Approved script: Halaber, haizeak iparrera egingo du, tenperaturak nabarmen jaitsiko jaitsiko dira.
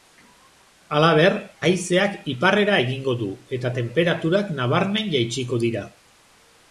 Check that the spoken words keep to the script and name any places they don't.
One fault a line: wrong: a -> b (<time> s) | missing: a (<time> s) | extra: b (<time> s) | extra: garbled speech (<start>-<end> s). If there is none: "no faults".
extra: eta (3.6 s)
missing: jaitsiko (5.6 s)